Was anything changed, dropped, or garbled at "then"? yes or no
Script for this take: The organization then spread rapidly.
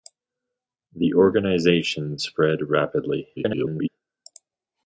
yes